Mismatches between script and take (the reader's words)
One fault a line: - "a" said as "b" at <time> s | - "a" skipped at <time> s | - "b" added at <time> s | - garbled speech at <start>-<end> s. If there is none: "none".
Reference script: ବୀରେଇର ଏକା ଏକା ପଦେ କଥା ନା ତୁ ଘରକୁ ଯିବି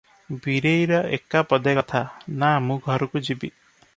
- "ଏକା" skipped at 1.4 s
- "ତୁ" said as "ମୁଁ" at 2.7 s